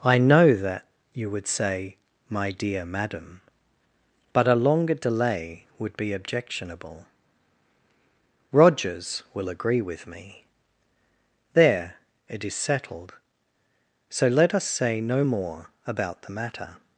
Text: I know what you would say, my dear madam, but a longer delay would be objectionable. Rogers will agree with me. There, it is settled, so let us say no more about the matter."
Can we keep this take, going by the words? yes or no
no